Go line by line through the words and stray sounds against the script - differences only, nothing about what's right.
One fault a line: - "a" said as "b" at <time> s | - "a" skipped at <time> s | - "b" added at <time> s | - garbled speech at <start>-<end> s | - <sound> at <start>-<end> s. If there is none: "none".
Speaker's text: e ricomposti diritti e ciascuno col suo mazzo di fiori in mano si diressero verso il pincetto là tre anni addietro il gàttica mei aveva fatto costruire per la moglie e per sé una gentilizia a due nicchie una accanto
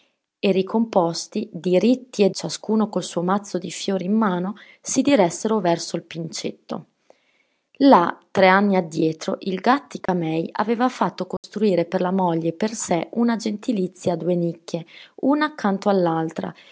- dropout at 10.1-10.1 s
- dropout at 11.4-11.4 s